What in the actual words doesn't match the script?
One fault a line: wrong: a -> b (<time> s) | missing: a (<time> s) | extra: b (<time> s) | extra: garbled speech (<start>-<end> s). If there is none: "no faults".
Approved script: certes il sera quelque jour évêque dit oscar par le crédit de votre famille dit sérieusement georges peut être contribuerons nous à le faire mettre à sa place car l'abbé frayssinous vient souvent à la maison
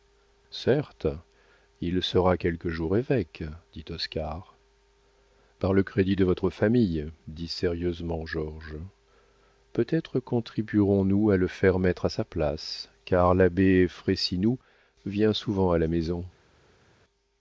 no faults